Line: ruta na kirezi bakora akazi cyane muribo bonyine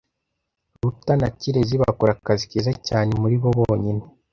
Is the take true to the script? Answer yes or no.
no